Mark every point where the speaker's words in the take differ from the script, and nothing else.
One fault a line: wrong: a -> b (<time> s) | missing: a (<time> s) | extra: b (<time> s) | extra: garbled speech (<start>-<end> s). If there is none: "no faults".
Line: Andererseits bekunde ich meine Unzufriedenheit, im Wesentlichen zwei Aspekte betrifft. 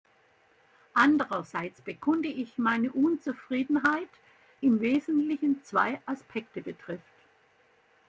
no faults